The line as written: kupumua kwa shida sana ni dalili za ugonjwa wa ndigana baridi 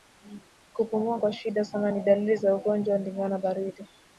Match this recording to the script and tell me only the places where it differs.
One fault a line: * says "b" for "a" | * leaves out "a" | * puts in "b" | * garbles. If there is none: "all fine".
all fine